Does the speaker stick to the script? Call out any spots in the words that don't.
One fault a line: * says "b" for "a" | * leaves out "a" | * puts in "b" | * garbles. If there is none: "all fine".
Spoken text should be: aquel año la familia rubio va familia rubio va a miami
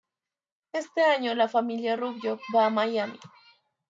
* says "este" for "aquel"
* leaves out "familia rubio va"